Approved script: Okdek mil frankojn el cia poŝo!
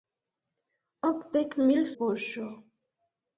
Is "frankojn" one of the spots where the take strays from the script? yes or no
yes